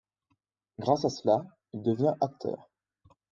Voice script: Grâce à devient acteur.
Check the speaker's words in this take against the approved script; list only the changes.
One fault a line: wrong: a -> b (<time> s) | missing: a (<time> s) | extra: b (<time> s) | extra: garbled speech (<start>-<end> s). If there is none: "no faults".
extra: cela il (1.1 s)